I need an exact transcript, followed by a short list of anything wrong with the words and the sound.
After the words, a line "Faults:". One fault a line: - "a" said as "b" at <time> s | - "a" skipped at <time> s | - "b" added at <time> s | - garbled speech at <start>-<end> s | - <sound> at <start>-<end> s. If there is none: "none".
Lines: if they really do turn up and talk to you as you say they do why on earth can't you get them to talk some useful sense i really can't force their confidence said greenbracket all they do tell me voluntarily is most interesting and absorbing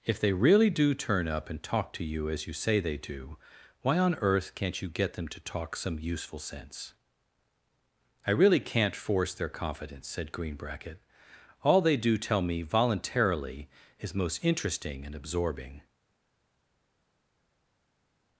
if they really do turn up and talk to you as you say they do why on earth can't you get them to talk some useful sense i really can't force their confidence said greenbracket all they do tell me voluntarily is most interesting and absorbing
Faults:
none